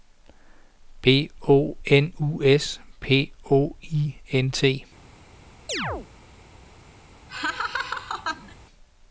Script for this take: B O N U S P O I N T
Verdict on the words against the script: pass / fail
pass